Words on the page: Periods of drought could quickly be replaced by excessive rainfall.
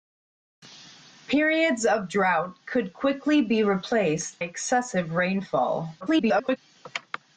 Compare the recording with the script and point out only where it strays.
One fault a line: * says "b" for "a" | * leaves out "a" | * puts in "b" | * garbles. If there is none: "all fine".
* leaves out "by"
* garbles